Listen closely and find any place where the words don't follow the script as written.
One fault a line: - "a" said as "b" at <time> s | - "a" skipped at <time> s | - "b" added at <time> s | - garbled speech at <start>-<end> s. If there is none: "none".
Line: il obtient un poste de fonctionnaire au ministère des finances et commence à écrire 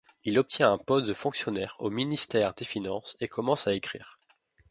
none